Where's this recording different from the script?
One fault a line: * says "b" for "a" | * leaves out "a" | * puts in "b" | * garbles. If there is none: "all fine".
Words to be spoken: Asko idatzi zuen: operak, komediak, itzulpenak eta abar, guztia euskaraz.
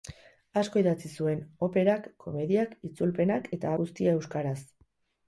* leaves out "abar"